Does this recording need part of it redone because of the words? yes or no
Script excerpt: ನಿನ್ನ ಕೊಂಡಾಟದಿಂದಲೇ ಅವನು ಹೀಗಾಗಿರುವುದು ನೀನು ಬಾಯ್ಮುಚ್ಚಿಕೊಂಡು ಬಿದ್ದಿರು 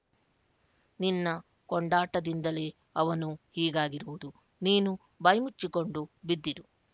no